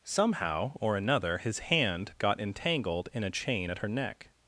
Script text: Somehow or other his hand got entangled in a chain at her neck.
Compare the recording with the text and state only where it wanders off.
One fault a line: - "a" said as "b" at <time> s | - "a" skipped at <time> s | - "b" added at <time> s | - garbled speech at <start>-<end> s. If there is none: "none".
- "other" said as "another" at 1.0 s